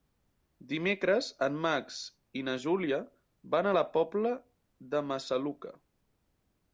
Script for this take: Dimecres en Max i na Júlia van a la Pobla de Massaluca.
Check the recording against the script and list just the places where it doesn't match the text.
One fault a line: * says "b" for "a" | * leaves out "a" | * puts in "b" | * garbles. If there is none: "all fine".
all fine